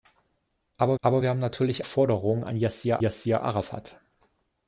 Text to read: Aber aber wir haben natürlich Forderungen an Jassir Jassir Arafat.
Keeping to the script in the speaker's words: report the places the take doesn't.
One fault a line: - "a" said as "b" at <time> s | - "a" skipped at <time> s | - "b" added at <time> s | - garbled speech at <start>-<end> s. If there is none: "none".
none